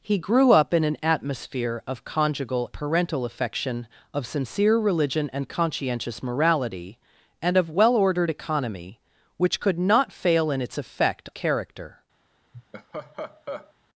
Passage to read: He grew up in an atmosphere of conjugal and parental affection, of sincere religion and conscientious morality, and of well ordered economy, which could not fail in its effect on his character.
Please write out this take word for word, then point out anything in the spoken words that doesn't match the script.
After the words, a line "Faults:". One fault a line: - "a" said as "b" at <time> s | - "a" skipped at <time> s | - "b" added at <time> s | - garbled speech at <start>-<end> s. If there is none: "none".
He grew up in an atmosphere of conjugal parental affection, of sincere religion and conscientious morality, and of well ordered economy, which could not fail in its effect character.
Faults:
- "and" skipped at 2.7 s
- "on his" skipped at 11.3 s